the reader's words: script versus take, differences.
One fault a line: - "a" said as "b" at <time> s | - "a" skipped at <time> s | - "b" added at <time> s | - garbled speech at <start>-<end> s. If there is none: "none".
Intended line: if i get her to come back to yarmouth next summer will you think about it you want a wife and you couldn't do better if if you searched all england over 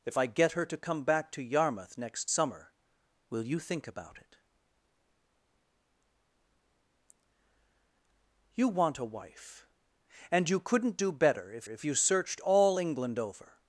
none